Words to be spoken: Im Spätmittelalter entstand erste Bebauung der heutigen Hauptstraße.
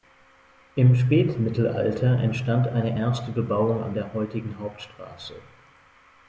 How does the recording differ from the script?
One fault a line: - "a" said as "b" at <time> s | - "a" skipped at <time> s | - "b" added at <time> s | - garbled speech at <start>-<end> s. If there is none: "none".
- "eine" added at 2.7 s
- "an" added at 3.8 s